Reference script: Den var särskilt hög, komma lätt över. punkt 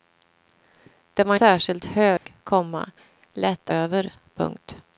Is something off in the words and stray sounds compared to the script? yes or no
yes